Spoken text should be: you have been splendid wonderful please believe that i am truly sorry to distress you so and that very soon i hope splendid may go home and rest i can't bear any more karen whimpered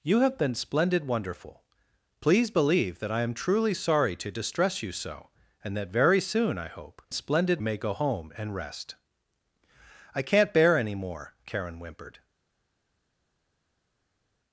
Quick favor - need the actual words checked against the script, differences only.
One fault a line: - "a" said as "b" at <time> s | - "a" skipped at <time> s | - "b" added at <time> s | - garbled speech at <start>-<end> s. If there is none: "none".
none